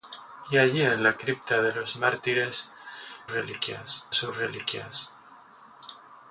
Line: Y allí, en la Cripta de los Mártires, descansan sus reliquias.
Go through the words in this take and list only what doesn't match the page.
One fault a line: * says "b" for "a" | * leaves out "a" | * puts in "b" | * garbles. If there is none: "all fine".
* says "reliquias" for "descansan"